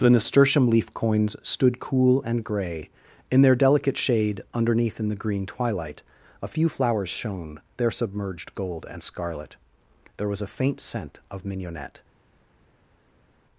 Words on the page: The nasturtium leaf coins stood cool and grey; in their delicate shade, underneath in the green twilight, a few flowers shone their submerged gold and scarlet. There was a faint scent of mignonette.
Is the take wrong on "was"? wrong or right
right